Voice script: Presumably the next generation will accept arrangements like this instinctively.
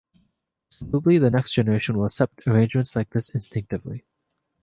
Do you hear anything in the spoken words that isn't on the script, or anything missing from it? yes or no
no